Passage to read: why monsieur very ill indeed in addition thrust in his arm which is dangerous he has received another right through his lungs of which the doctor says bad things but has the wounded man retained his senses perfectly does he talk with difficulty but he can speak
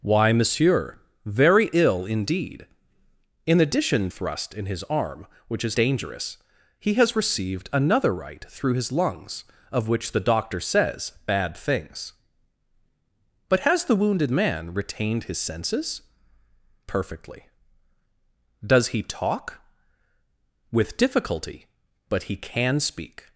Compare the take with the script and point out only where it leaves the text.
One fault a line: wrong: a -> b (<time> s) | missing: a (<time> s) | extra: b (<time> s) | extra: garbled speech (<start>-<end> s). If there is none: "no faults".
no faults